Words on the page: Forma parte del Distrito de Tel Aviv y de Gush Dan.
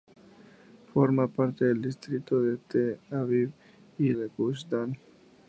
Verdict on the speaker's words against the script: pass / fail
pass